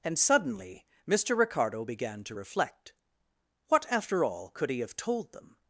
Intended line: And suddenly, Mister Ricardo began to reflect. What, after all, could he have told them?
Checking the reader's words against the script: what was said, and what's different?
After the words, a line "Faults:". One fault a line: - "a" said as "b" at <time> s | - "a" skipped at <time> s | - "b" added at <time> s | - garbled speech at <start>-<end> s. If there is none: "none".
And suddenly, Mister Ricardo began to reflect. What, after all, could he have told them?
Faults:
none